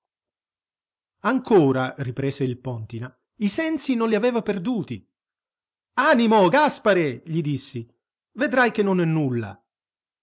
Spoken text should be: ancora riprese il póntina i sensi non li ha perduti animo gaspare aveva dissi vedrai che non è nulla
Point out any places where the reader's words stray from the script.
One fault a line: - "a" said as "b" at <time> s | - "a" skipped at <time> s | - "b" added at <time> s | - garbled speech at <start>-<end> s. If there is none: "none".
- "ha" said as "aveva" at 4.1 s
- "aveva" said as "gli" at 7.3 s